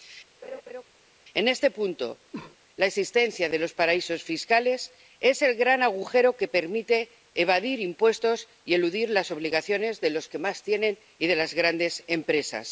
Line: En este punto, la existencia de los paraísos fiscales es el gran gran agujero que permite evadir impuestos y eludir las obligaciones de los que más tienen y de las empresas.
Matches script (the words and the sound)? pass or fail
fail